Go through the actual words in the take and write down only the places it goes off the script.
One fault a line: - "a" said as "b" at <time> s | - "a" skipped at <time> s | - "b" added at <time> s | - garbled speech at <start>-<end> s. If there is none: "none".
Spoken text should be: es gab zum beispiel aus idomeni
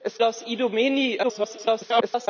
- "gab zum beispiel" skipped at 0.2 s
- garbled speech at 1.2-2.3 s